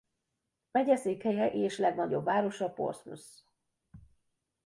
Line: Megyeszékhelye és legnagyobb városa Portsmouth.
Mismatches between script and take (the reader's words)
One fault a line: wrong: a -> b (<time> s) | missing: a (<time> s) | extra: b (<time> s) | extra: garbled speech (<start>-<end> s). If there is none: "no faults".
no faults